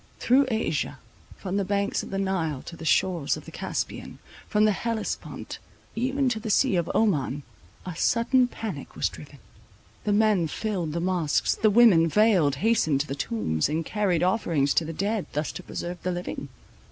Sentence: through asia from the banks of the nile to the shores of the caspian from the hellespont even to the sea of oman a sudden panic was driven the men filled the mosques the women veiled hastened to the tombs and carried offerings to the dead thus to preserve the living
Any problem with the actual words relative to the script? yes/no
no